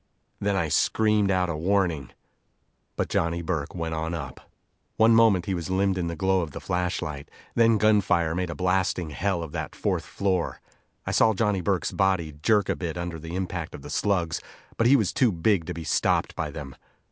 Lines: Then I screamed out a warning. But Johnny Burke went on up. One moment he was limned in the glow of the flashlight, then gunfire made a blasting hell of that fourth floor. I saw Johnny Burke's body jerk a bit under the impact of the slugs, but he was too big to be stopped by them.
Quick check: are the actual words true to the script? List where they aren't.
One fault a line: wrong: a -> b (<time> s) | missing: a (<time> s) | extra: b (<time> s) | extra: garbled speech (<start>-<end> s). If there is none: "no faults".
no faults